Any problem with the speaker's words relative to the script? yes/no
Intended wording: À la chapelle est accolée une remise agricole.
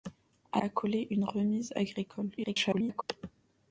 yes